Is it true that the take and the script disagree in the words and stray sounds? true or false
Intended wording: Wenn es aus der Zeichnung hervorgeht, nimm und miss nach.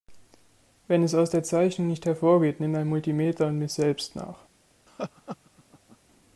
true